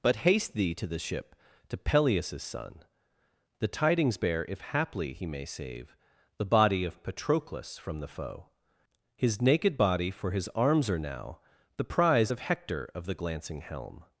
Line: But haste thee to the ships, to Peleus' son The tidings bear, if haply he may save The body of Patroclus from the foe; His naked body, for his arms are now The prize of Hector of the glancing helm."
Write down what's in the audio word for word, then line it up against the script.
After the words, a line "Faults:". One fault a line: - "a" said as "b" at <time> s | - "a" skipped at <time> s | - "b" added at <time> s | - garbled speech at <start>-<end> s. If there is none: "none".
But haste thee to the ship, to Peleus' son The tidings bear, if haply he may save The body of Patroclus from the foe; His naked body, for his arms are now The prize of Hector of the glancing helm."
Faults:
- "ships" said as "ship" at 1.0 s